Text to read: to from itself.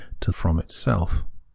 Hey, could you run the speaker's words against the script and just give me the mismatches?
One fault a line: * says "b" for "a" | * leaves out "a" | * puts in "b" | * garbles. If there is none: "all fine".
all fine